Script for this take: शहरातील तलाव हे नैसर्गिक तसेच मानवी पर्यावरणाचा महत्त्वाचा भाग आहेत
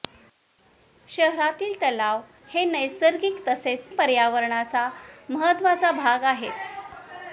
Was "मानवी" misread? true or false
true